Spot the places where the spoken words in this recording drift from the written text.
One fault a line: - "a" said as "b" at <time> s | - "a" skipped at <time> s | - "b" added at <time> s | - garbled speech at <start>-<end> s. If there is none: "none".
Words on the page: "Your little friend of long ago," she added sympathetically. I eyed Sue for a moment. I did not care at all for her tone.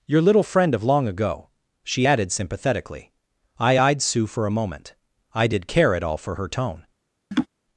- "not" skipped at 5.7 s